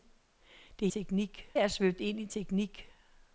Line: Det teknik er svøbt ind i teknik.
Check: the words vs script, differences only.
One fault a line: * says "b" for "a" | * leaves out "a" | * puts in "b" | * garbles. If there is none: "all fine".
all fine